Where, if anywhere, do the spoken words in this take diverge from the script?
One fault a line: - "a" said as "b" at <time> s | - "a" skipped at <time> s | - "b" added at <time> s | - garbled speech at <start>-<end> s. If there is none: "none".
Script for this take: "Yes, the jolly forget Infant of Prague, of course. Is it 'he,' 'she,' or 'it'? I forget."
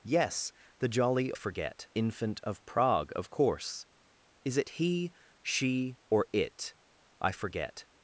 none